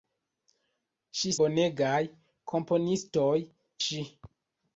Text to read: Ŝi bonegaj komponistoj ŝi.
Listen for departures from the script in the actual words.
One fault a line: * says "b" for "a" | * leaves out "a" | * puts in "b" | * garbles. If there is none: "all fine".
all fine